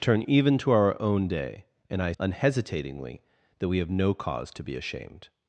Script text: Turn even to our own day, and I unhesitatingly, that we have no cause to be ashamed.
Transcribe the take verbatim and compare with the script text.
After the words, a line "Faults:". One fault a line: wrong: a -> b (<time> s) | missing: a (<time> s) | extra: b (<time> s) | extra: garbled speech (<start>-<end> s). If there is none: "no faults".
Turn even to our own day, and I unhesitatingly, that we have no cause to be ashamed.
Faults:
no faults